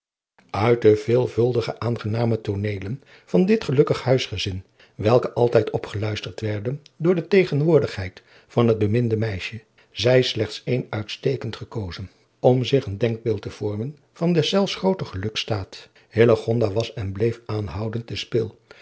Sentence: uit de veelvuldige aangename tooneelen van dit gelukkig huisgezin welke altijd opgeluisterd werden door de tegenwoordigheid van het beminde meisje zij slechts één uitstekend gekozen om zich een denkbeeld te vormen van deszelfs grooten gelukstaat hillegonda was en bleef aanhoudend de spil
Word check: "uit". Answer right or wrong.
right